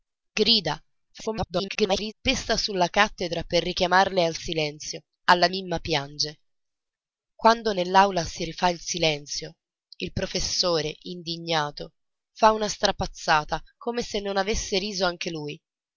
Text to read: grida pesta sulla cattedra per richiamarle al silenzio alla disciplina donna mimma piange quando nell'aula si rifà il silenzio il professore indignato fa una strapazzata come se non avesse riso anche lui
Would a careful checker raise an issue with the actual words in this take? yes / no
yes